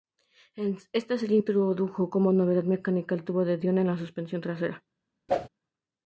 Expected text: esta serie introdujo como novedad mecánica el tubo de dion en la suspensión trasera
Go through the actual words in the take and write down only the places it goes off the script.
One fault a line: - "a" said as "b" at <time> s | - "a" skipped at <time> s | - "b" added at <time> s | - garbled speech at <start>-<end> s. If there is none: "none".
none